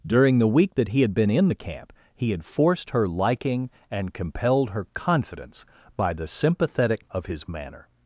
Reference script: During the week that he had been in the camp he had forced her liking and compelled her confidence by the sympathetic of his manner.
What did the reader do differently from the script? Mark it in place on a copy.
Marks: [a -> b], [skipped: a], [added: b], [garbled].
During the week that he had been in the camp he had forced her liking and compelled her confidence by the sympathetic of his manner.